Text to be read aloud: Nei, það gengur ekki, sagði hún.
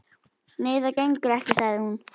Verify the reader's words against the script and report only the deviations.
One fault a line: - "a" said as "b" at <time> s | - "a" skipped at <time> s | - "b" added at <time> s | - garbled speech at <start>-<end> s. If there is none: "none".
none